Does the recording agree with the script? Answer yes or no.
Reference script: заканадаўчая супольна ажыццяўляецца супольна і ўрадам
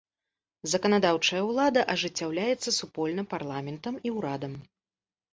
no